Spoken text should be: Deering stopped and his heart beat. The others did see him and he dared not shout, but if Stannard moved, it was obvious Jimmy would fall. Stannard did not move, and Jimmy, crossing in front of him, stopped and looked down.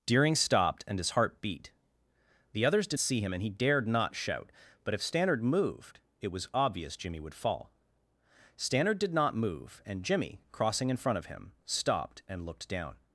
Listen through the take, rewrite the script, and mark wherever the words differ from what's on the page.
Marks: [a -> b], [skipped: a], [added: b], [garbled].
Deering stopped and his heart beat. The others did see him and he dared not shout, but if Stannard moved, it was obvious Jimmy would fall. Stannard did not move, and Jimmy, crossing in front of him, stopped and looked down.